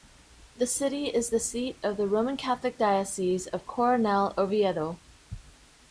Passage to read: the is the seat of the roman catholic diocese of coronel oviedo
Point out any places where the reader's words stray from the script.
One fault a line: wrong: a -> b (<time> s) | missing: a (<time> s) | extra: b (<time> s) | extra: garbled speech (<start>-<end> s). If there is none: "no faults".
extra: city (0.7 s)